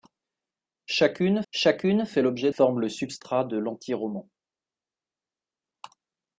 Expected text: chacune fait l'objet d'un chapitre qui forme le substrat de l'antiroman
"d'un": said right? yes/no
no